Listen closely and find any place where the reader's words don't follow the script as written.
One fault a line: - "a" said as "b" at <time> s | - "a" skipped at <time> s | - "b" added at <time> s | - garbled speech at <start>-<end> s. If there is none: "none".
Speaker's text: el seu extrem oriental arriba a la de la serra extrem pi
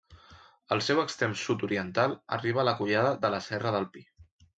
- "sud" added at 1.4 s
- "collada" added at 2.8 s
- "extrem" said as "del" at 3.8 s